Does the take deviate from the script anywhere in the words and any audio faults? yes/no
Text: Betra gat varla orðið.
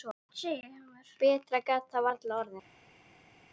yes